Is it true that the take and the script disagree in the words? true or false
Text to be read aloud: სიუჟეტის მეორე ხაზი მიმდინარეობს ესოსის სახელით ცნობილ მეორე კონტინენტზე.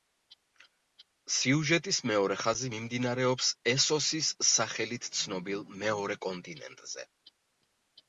false